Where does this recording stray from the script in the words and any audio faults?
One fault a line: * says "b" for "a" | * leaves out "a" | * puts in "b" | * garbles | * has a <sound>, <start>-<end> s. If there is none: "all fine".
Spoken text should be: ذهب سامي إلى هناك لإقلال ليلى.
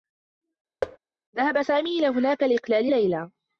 * has a thud, 0.8-1.0 s